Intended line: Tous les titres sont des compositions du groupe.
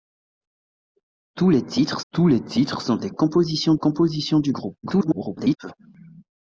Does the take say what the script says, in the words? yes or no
no